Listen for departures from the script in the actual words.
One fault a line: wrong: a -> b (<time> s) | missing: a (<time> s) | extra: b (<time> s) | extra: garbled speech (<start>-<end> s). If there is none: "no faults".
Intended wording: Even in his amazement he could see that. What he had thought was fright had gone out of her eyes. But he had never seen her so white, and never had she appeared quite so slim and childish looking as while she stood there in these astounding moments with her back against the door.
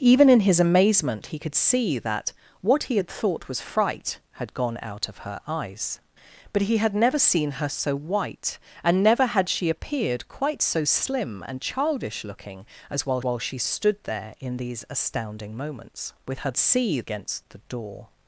extra: while (13.2 s)
wrong: back -> see (16.6 s)